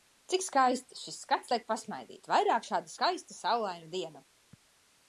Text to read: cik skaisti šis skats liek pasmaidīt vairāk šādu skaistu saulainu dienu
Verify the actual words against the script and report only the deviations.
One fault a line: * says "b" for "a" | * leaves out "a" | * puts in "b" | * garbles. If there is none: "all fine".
all fine